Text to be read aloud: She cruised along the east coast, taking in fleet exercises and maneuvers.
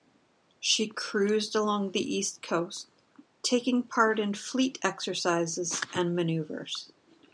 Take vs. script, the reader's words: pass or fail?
fail